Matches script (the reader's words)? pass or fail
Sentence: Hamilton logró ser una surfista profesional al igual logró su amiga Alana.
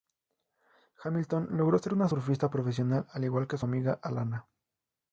fail